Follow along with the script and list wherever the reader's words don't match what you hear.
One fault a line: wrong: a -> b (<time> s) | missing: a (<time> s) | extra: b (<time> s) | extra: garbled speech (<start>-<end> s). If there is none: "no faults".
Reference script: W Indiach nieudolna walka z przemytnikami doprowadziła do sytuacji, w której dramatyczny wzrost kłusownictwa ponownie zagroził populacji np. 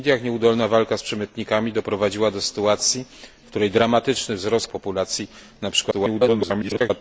missing: kłusownictwa ponownie zagroził (4.7 s)
extra: garbled speech (5.9-6.9 s)